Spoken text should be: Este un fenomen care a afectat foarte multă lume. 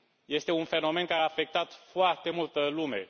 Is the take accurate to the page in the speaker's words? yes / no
yes